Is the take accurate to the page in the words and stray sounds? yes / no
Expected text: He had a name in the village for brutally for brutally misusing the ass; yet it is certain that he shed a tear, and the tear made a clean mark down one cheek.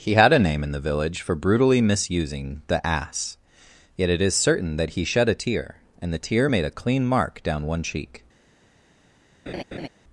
no